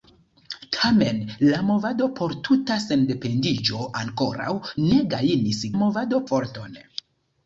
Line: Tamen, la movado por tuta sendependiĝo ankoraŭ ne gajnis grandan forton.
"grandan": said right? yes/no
no